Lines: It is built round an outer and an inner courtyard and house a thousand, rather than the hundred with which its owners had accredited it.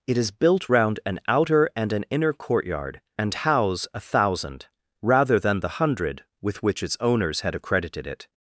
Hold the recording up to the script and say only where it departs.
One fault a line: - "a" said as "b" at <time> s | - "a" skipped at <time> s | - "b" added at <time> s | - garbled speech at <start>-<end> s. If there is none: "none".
none